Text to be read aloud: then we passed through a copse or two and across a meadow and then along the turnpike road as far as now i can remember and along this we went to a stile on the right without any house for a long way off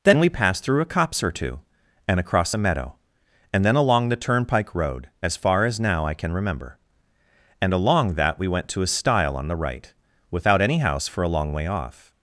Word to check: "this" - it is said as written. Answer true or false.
false